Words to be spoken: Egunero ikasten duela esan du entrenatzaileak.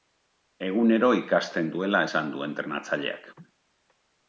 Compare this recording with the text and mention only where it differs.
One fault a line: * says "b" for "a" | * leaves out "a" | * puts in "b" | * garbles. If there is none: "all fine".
all fine